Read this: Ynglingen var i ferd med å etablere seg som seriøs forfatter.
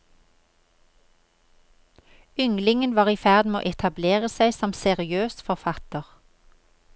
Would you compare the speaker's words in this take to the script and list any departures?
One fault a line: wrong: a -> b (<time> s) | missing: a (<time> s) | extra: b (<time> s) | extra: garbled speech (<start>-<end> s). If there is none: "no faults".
no faults